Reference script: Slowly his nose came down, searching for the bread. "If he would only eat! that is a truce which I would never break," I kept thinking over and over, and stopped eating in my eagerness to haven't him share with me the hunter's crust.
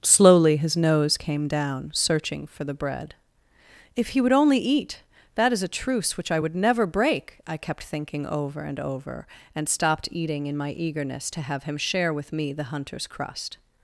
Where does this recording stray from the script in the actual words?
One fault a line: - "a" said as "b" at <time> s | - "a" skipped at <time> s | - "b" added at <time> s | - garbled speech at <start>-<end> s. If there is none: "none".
- "haven't" said as "have" at 11.4 s